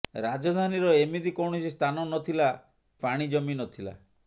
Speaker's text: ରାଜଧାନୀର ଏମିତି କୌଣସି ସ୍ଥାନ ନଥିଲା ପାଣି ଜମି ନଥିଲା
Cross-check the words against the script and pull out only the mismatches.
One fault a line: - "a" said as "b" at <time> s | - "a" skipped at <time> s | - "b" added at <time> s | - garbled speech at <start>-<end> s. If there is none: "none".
none